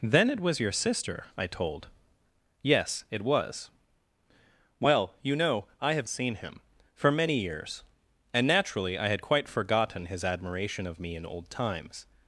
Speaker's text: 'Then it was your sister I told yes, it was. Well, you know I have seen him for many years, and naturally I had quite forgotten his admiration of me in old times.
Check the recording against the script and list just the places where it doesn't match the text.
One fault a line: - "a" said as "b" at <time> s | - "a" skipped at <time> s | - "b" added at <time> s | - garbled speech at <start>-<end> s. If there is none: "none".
none